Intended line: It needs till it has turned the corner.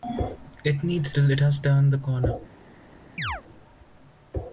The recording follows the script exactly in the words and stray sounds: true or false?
false